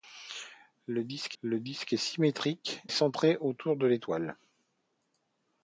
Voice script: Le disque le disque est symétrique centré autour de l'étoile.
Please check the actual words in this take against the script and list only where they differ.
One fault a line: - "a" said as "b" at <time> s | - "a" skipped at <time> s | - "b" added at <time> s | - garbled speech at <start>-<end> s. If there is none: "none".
none